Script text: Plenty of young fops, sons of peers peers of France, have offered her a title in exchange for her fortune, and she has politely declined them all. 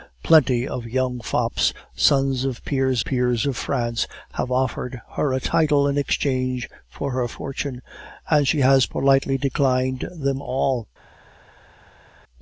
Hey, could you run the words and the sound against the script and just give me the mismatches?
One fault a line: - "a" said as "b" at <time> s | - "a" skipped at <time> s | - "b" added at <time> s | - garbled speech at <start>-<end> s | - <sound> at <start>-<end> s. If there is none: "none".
none